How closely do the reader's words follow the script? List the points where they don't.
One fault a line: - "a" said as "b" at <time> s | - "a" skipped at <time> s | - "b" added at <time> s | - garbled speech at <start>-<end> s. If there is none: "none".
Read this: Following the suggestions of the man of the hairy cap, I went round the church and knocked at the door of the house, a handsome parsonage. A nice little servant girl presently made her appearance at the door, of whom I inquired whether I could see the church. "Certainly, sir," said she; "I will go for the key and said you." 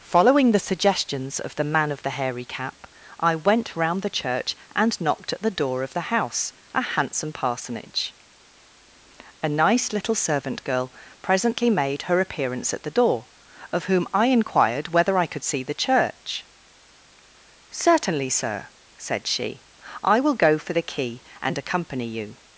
- "said" said as "accompany" at 21.6 s